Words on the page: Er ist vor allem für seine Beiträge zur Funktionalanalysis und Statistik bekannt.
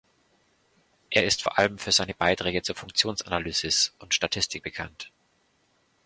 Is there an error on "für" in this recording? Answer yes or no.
no